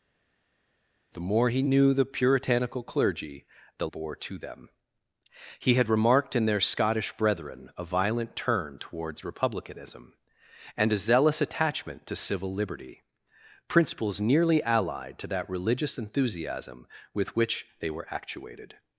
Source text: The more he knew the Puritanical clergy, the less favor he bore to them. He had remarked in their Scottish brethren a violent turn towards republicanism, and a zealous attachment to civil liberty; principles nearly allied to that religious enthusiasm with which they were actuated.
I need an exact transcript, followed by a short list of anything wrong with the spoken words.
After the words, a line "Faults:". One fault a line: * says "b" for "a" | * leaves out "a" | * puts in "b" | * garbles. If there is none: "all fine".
The more he knew the Puritanical clergy, the bore to them. He had remarked in their Scottish brethren a violent turn towards republicanism, and a zealous attachment to civil liberty; principles nearly allied to that religious enthusiasm with which they were actuated.
Faults:
* leaves out "less favor he"